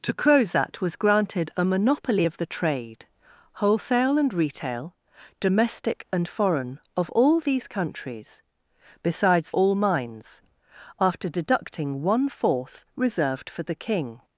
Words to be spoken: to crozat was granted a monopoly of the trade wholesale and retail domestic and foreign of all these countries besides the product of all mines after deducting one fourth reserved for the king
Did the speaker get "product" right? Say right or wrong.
wrong